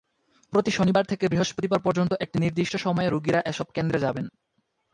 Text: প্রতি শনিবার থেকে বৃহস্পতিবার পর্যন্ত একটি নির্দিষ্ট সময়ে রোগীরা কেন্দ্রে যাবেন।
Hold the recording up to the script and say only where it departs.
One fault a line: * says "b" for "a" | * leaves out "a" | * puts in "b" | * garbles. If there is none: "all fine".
* puts in "এসব"